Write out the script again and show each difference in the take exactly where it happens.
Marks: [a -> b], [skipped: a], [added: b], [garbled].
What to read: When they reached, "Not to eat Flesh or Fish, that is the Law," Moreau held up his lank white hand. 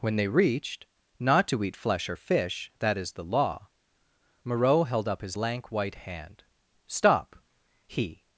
When they reached, "Not to eat Flesh or Fish, that is the Law," Moreau held up his lank white hand. [added: Stop he]